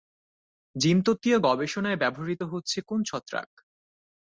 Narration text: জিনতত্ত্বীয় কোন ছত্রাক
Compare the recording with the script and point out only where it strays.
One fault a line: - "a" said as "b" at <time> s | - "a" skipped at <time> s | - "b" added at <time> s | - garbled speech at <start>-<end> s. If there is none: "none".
- "গবেষণায় ব্যবহৃত হচ্ছে" added at 1.4 s